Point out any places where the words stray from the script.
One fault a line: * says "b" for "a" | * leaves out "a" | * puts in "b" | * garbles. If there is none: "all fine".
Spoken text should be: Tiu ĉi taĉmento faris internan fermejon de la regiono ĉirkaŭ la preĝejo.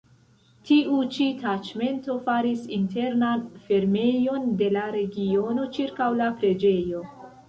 all fine